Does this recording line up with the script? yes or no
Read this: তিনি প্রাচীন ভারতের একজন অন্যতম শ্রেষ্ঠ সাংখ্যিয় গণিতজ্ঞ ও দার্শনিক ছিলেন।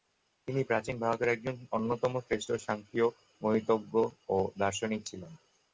yes